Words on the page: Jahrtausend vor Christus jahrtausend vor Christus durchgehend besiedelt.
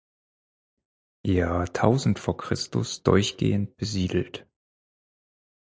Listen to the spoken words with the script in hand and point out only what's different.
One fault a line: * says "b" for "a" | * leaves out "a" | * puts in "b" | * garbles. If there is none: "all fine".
* leaves out "jahrtausend vor Christus"